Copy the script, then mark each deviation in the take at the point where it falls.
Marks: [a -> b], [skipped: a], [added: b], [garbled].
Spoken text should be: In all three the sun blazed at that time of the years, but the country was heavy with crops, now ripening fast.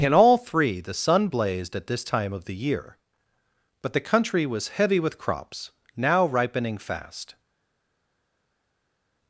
In all three the sun blazed at [that -> this] time of the [years, -> year] but the country was heavy with crops, now ripening fast.